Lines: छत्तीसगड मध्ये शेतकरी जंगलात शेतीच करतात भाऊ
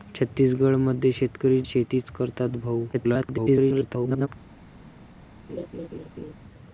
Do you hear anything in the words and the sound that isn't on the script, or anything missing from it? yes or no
yes